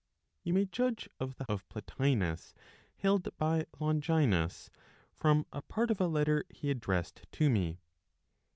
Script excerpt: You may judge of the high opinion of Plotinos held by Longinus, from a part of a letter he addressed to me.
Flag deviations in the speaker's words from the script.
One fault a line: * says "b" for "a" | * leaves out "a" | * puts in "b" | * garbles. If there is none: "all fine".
* leaves out "high opinion"